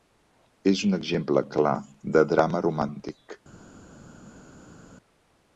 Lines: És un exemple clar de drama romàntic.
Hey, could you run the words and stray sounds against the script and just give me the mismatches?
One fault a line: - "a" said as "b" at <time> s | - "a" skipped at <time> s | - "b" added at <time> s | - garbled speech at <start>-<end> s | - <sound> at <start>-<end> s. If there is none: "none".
none